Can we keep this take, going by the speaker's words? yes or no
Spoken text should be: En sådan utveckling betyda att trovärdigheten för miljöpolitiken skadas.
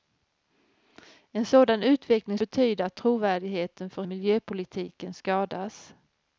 yes